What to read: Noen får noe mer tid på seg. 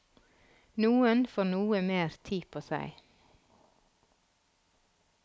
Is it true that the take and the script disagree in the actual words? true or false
false